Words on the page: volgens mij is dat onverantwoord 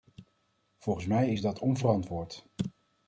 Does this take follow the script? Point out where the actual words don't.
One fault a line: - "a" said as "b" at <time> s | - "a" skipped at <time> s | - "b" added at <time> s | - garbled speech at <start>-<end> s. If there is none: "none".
none